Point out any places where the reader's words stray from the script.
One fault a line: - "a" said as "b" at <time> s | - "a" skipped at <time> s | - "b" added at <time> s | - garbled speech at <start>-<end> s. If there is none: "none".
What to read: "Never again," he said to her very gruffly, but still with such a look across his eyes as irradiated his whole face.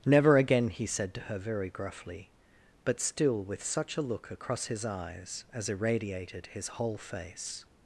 none